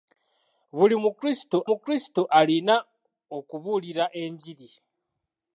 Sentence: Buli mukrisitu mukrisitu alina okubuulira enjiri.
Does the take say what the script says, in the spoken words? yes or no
yes